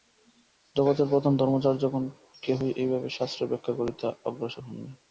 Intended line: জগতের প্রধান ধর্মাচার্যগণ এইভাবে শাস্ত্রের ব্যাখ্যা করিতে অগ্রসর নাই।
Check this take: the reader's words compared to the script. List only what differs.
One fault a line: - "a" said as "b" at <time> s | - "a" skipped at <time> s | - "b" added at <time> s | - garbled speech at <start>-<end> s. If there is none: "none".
- "কেহই" added at 2.4 s
- "হন" added at 4.6 s